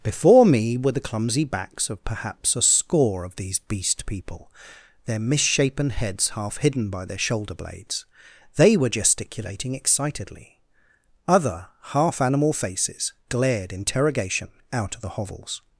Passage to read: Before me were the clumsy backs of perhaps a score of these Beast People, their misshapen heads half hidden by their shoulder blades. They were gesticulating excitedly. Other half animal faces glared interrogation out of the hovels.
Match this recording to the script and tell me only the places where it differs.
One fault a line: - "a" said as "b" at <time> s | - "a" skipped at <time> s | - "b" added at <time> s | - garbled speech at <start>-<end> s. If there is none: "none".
none